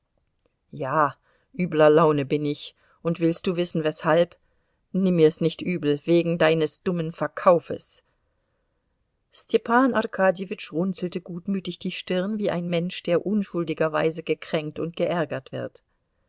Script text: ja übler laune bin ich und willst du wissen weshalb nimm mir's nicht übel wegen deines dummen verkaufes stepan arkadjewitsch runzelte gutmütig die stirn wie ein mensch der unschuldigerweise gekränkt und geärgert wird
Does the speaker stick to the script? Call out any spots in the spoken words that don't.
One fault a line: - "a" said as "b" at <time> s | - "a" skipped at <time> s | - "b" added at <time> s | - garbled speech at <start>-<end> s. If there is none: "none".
none